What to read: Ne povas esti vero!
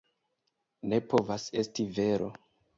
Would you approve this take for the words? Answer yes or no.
yes